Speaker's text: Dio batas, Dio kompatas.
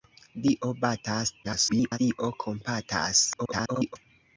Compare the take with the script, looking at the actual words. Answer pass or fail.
fail